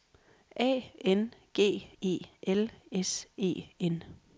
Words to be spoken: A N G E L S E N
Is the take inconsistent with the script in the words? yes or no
no